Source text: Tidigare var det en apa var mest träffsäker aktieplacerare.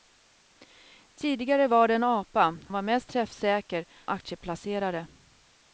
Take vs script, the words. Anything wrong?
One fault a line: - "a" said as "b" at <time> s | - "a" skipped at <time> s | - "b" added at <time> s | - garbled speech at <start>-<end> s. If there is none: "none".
none